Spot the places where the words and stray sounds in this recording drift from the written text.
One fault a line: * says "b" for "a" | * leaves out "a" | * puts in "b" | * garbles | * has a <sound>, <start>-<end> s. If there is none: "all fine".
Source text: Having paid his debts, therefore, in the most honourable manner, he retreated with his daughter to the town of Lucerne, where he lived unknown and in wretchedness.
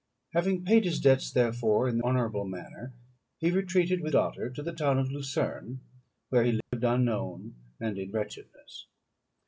* leaves out "most"
* leaves out "his"
* has a dropout, 6.6-6.7 s